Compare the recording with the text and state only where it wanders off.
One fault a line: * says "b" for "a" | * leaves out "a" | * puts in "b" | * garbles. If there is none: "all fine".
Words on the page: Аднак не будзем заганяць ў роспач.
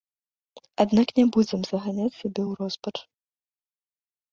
* puts in "сябе"